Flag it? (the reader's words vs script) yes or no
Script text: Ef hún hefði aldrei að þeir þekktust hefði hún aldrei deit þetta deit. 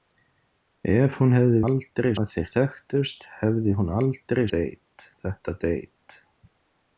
no